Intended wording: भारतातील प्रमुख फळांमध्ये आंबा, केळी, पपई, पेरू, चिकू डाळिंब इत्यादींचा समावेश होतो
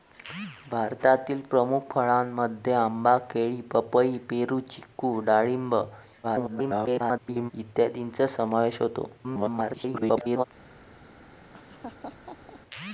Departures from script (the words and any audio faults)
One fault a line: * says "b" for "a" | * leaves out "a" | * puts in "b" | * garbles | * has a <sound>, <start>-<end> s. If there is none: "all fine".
* garbles
* garbles
* has a laugh, 11.5-12.6 s